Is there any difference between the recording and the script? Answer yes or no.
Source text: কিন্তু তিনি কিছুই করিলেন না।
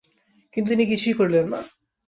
no